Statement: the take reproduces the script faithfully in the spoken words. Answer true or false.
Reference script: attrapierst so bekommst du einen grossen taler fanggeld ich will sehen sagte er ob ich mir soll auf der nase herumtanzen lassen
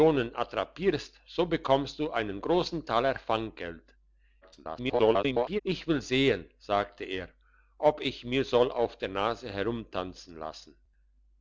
false